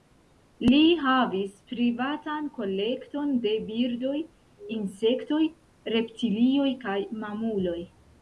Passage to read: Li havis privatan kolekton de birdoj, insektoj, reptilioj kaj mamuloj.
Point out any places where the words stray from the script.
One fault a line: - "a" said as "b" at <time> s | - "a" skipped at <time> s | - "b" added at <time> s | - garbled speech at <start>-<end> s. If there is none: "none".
none